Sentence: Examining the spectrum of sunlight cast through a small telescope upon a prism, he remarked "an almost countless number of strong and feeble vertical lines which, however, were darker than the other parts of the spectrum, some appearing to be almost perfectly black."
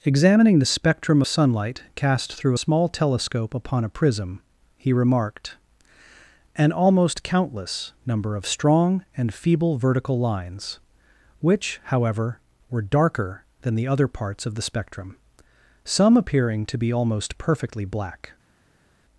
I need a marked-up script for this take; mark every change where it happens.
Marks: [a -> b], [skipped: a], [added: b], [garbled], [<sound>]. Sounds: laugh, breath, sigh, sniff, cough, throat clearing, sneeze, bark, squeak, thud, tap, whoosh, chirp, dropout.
Examining the spectrum [skipped: of] sunlight cast through [skipped: a] small telescope upon a prism, he remarked "an almost countless number of strong and feeble vertical lines which, however, were darker than the other parts of the spectrum, some appearing to be almost perfectly black."